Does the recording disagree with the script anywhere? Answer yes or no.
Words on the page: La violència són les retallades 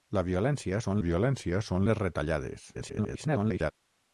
yes